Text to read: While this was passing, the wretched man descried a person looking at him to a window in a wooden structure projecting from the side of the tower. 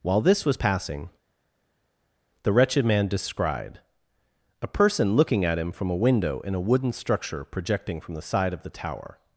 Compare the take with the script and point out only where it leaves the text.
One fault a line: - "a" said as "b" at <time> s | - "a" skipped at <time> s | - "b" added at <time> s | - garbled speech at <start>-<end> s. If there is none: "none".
- "to" said as "from" at 5.7 s